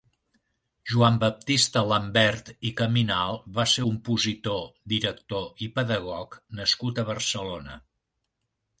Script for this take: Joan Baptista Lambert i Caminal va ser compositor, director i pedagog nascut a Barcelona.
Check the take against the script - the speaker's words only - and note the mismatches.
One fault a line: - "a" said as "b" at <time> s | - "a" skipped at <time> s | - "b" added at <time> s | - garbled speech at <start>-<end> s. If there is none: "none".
none